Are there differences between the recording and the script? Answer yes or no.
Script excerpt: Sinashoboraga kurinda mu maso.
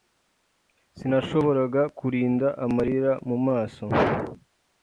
yes